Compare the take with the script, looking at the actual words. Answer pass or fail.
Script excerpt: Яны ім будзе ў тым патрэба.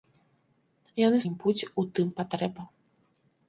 pass